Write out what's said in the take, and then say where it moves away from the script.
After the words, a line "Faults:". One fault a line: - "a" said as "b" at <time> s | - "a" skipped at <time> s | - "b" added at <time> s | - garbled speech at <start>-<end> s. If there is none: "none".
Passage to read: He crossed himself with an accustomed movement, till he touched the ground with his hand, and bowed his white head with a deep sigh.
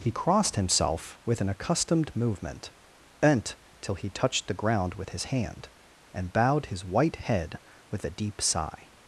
He crossed himself with an accustomed movement, bent till he touched the ground with his hand, and bowed his white head with a deep sigh.
Faults:
- "bent" added at 3.2 s